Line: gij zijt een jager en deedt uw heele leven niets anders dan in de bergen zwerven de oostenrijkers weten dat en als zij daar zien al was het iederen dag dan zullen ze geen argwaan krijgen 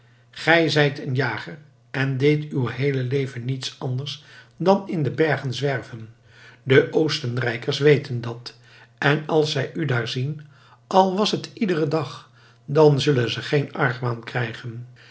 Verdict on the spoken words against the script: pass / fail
fail